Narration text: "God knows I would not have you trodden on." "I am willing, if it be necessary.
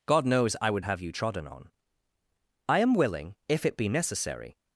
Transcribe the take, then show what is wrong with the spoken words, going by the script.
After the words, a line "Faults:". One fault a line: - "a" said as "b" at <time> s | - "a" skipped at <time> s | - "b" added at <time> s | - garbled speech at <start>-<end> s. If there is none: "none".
"God knows I would have you trodden on." "I am willing, if it be necessary.
Faults:
- "not" skipped at 0.8 s